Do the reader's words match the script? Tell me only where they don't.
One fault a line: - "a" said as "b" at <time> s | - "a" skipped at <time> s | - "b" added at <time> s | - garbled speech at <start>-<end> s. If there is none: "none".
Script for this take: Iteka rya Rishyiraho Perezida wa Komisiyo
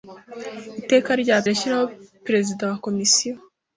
none